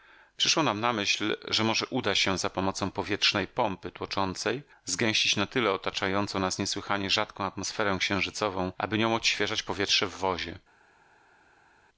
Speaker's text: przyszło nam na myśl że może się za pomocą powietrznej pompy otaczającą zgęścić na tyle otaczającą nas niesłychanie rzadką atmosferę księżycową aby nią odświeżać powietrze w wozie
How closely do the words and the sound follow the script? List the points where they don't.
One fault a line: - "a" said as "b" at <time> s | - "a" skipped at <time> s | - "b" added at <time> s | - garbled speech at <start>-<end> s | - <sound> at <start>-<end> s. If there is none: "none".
- "uda" added at 1.9 s
- "otaczającą" said as "tłoczącej" at 3.9 s